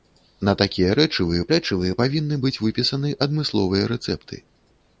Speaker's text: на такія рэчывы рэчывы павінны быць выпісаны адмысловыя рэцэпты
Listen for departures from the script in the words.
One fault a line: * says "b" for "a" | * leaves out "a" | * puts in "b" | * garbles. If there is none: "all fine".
all fine